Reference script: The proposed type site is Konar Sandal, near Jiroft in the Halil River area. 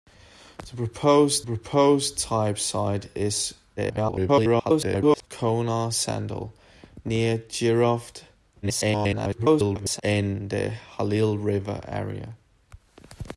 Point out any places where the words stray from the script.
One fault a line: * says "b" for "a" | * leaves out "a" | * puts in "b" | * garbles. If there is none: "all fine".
* puts in "proposed"
* garbles
* garbles